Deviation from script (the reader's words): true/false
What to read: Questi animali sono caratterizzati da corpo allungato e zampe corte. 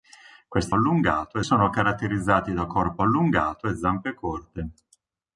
true